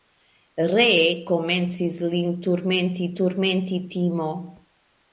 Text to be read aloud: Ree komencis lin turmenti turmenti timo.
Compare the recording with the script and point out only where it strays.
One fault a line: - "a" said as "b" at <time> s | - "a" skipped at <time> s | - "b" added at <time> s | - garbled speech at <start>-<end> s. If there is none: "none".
none